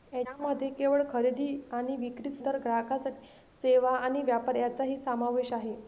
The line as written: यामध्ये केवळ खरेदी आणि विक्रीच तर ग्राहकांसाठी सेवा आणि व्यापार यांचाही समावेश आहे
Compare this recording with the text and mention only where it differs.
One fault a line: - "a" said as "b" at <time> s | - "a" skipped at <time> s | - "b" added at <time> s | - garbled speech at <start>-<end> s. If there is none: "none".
none